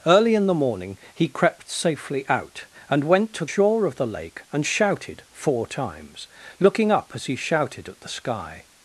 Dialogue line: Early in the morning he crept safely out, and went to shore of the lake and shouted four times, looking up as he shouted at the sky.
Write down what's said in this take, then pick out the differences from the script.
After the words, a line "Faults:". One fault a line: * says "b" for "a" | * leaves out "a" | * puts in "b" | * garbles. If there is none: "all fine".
Early in the morning he crept safely out, and went to shore of the lake and shouted four times, looking up as he shouted at the sky.
Faults:
all fine